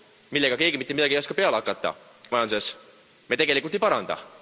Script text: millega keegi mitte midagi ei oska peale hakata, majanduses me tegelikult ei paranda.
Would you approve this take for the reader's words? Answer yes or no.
yes